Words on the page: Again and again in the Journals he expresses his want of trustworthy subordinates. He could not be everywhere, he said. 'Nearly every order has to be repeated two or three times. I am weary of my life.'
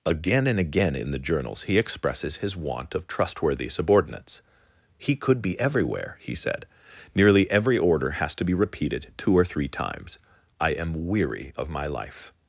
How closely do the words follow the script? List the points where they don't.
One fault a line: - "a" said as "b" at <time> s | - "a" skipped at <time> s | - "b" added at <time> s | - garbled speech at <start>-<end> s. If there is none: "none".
- "not" skipped at 5.4 s